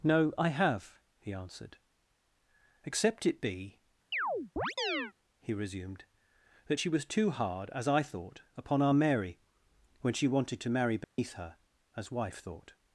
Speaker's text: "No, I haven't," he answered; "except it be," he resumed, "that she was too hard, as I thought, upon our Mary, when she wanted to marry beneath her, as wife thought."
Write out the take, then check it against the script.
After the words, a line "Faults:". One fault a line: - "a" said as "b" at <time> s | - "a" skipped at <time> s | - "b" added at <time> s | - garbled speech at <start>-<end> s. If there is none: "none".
"No, I have," he answered; "except it be," he resumed, "that she was too hard, as I thought, upon our Mary, when she wanted to marry beneath her, as wife thought."
Faults:
- "haven't" said as "have" at 0.5 s